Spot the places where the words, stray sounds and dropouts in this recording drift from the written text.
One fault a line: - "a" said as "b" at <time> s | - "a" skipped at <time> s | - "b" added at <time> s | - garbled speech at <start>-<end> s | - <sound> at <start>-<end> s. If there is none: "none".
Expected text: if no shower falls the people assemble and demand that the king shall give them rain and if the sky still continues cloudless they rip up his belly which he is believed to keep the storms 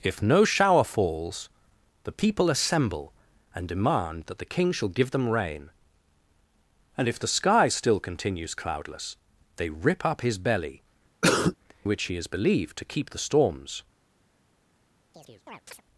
- cough at 11.2-11.6 s
- chirp at 15.1-15.8 s